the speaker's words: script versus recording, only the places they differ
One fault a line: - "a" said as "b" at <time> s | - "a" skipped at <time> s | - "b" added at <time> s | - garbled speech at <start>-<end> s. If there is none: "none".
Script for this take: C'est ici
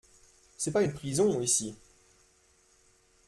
- "pas une prison" added at 0.7 s